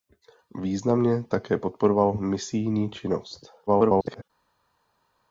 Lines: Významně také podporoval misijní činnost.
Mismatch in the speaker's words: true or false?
true